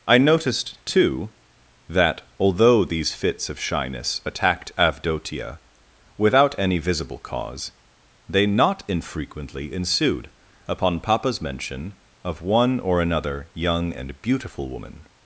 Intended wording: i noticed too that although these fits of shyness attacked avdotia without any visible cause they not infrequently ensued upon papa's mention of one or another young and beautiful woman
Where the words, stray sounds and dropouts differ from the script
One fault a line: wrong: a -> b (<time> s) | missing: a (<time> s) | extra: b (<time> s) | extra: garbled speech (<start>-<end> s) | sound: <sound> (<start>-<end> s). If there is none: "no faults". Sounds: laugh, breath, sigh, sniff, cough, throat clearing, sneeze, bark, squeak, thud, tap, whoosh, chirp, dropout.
no faults